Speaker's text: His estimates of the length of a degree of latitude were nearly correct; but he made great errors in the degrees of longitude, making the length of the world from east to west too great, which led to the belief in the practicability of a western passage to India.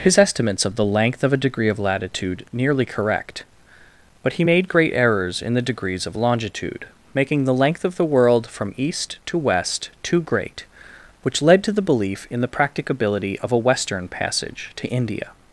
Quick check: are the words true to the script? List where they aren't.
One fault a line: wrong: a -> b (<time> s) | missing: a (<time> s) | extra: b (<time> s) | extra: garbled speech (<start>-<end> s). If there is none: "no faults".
missing: were (2.4 s)